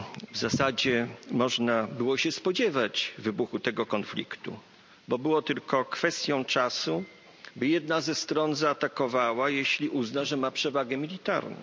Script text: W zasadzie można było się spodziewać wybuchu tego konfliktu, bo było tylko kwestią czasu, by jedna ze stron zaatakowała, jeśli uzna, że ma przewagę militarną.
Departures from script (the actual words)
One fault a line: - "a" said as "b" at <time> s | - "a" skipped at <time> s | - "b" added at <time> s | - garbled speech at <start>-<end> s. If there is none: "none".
none